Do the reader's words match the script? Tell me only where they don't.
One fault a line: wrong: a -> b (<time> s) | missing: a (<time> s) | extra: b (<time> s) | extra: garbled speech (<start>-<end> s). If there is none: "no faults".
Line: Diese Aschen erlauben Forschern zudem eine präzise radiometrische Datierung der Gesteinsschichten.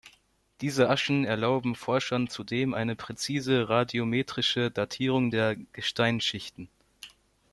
no faults